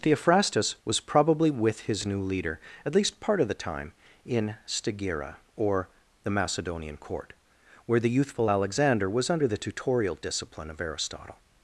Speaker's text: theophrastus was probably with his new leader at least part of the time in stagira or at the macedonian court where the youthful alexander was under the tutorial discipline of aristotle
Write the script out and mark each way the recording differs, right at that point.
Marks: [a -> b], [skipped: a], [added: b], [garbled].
theophrastus was probably with his new leader at least part of the time in stagira or [skipped: at] the macedonian court where the youthful alexander was under the tutorial discipline of aristotle